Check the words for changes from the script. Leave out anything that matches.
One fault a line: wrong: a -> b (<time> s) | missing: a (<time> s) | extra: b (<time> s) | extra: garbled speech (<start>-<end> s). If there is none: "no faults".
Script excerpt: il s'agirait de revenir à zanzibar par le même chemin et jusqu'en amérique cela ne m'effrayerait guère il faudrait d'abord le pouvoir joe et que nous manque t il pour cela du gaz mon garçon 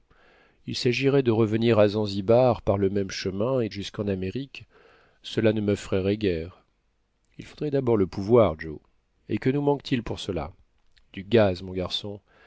no faults